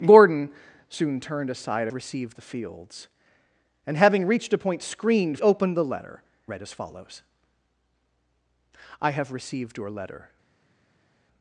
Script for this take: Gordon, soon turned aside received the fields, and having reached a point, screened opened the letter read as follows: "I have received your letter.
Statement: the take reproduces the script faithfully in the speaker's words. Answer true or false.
true